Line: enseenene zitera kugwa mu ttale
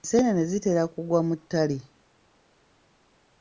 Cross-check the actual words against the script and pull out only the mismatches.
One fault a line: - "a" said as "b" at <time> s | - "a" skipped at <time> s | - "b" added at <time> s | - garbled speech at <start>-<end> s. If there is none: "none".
none